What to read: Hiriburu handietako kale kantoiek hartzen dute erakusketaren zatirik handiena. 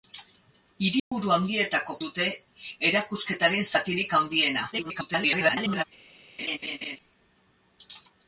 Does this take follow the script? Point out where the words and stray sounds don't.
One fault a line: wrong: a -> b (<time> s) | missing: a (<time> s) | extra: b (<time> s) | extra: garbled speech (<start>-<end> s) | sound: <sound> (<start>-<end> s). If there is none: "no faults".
sound: dropout (1.0-1.1 s)
missing: kale kantoiek hartzen (2.0 s)
extra: garbled speech (4.7-5.8 s)
sound: laugh (6.4-7.0 s)